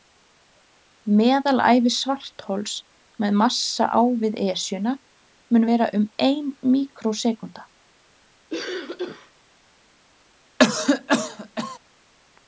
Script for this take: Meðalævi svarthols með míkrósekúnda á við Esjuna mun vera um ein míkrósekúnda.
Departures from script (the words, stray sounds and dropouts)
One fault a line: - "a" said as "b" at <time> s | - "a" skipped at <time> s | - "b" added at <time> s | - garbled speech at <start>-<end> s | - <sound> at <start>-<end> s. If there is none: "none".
- "míkrósekúnda" said as "massa" at 3.4 s
- cough at 8.5-9.3 s
- cough at 10.6-11.8 s